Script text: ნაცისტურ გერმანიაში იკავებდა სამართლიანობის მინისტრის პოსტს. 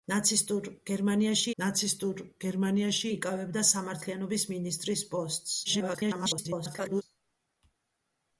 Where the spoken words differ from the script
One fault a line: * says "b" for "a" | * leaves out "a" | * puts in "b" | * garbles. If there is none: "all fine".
* puts in "ნაცისტურ გერმანიაში"
* garbles